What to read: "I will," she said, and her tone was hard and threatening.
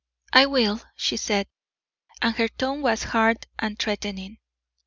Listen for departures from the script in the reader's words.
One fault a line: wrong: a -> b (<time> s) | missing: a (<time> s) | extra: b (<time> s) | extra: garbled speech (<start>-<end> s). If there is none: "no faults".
no faults